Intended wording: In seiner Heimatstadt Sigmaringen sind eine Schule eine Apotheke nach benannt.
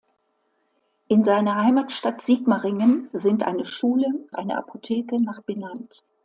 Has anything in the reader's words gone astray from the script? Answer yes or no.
no